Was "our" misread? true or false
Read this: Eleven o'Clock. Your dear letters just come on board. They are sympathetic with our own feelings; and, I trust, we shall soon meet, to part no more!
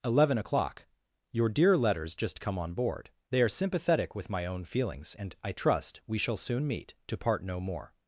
true